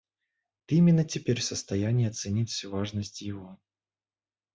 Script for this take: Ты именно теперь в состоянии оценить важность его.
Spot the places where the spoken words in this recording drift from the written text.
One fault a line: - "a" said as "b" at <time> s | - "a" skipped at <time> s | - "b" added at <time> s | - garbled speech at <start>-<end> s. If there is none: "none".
- "всю" added at 2.5 s